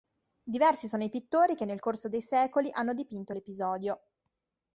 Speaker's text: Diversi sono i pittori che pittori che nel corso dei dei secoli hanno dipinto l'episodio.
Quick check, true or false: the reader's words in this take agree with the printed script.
false